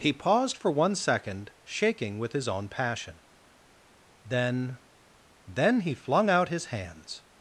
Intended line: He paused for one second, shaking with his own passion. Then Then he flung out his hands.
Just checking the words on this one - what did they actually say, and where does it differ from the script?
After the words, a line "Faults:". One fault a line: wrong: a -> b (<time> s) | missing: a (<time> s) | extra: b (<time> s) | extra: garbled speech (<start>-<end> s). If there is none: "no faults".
He paused for one second, shaking with his own passion. Then Then he flung out his hands.
Faults:
no faults